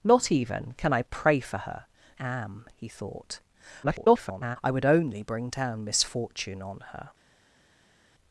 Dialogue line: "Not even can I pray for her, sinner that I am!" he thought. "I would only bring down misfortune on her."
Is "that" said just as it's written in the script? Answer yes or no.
no